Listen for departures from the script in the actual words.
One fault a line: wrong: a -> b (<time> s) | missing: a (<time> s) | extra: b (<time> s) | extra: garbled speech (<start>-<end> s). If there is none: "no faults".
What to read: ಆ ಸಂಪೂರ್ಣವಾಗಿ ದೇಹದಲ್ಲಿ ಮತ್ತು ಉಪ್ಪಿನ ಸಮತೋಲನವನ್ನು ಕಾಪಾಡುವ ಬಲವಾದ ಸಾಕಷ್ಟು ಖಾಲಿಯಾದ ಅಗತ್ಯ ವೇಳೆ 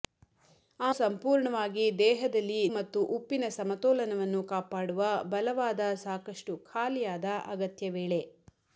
no faults